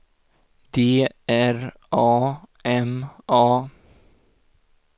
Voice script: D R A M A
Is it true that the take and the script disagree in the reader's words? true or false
false